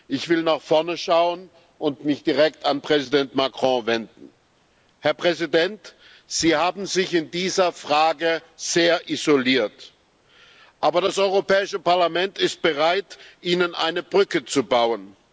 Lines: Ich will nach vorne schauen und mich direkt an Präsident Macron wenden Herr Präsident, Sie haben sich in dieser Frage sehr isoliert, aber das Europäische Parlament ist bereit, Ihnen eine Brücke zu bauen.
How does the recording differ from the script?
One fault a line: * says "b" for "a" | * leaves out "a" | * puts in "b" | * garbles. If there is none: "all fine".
all fine